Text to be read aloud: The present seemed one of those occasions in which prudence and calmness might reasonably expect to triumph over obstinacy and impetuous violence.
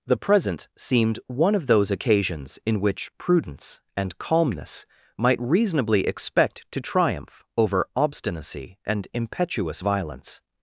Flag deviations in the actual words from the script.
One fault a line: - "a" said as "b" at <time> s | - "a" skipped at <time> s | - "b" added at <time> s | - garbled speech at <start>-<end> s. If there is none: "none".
none